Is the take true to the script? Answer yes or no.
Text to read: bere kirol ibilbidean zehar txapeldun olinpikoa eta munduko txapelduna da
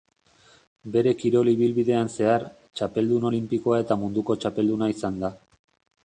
no